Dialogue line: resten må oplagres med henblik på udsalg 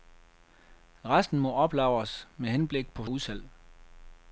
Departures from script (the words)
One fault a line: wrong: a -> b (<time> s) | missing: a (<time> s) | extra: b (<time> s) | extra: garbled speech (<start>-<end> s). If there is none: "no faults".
no faults